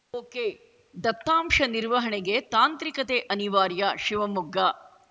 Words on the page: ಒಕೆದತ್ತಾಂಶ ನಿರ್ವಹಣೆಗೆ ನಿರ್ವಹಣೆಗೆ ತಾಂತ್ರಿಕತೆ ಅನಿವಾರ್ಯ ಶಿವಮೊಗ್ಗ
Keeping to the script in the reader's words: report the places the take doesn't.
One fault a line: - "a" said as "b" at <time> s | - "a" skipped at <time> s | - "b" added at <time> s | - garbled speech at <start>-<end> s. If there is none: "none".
- "ನಿರ್ವಹಣೆಗೆ" skipped at 2.4 s